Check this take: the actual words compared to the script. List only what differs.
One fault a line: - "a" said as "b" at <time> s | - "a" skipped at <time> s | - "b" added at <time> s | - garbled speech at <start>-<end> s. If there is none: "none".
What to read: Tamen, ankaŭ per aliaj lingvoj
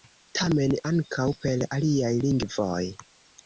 none